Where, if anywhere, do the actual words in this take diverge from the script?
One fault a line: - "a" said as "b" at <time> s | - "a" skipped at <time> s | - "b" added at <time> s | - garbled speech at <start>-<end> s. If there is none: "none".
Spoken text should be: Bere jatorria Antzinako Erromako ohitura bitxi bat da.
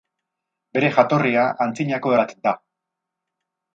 - "Erromako ohitura bitxi" skipped at 2.2 s